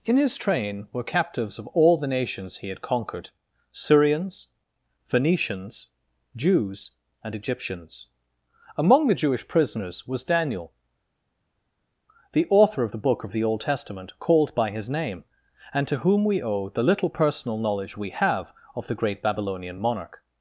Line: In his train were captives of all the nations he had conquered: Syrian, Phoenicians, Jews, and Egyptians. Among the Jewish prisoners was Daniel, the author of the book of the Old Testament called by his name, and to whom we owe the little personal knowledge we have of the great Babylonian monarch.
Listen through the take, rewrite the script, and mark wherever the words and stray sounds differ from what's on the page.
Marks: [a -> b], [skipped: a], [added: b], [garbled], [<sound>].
In his train were captives of all the nations he had conquered: [Syrian, -> Syrians] Phoenicians, Jews, and Egyptians. Among the Jewish prisoners was Daniel, the author of the book of the Old Testament called by his name, and to whom we owe the little personal knowledge we have of the great Babylonian monarch.